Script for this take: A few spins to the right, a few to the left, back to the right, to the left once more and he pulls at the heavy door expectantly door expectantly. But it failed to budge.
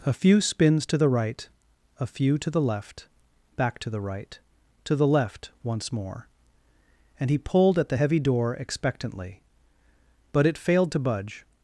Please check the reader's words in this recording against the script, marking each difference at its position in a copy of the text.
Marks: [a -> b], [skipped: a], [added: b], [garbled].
A few spins to the right, a few to the left, back to the right, to the left once more and he [pulls -> pulled] at the heavy door expectantly [skipped: door expectantly.] But it failed to budge.